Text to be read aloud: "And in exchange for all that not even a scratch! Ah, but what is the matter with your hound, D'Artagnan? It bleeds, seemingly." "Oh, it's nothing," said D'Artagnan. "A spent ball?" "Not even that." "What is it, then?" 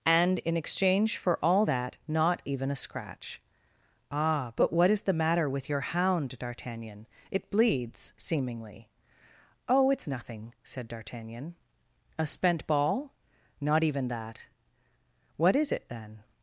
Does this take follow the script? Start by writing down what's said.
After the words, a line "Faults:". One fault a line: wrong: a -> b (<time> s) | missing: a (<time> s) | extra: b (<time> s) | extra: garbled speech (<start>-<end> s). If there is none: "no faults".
"And in exchange for all that not even a scratch! Ah, but what is the matter with your hound, D'Artagnan? It bleeds, seemingly." "Oh, it's nothing," said D'Artagnan. "A spent ball?" "Not even that." "What is it, then?"
Faults:
no faults